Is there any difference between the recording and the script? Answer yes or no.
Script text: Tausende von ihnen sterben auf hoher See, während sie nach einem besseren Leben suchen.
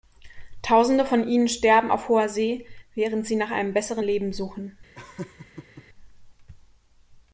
no